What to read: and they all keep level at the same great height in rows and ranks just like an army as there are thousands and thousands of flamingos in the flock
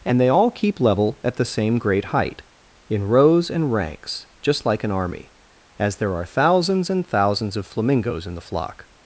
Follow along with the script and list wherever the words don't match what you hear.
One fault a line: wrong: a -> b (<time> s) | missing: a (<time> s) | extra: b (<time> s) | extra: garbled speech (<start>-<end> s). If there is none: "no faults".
no faults